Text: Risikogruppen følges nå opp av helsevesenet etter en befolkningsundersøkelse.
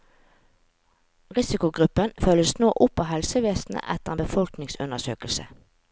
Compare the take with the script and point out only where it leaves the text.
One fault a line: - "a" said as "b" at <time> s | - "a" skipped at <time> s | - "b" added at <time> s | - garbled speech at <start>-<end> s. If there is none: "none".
none